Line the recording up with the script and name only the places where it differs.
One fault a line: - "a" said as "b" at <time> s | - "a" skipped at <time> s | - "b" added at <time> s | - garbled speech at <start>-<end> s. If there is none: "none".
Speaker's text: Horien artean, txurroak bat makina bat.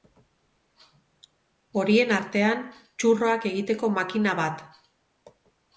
- "bat" said as "egiteko" at 3.5 s